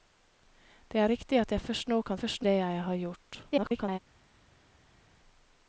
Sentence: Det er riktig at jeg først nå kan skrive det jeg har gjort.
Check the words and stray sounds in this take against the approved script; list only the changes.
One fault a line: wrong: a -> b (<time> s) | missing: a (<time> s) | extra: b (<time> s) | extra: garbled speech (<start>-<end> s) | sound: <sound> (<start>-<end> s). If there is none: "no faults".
wrong: skrive -> først (2.2 s)
extra: garbled speech (3.5-4.0 s)